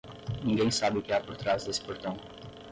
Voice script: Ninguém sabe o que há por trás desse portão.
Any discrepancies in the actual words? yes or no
no